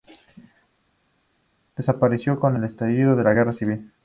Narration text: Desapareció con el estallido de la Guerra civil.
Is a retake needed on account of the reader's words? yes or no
no